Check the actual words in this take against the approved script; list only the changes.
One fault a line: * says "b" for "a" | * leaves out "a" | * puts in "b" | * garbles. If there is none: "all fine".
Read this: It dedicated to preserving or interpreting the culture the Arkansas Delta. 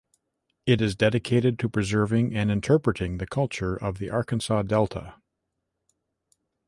* puts in "is"
* says "and" for "or"
* puts in "of"